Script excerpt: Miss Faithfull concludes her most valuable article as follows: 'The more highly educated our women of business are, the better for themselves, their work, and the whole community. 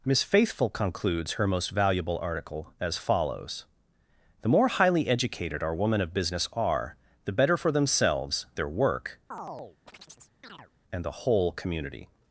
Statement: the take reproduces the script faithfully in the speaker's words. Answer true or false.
true